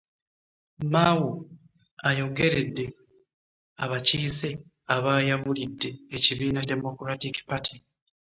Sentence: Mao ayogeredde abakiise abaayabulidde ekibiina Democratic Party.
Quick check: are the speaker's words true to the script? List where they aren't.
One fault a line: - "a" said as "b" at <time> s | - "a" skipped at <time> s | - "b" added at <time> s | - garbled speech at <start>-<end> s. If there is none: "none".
none